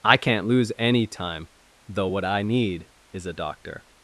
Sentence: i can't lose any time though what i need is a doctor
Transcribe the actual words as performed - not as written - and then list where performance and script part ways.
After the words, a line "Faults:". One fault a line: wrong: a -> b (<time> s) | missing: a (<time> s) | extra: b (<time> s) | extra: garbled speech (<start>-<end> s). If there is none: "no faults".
i can't lose any time though what i need is a doctor
Faults:
no faults